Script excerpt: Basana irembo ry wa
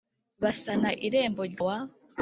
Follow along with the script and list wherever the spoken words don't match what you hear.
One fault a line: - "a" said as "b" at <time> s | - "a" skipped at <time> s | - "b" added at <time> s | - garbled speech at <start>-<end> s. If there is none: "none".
none